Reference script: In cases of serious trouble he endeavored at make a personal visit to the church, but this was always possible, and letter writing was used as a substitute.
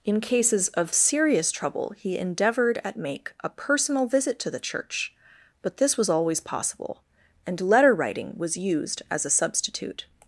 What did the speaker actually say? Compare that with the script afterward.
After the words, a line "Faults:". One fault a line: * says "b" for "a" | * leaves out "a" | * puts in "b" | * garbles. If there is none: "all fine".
In cases of serious trouble he endeavored at make a personal visit to the church, but this was always possible, and letter writing was used as a substitute.
Faults:
all fine